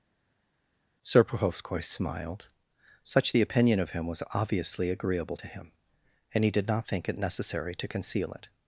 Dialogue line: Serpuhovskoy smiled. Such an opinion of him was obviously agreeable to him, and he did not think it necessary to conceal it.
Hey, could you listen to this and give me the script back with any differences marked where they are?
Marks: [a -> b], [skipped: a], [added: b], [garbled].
Serpuhovskoy smiled. Such [an -> the] opinion of him was obviously agreeable to him, and he did not think it necessary to conceal it.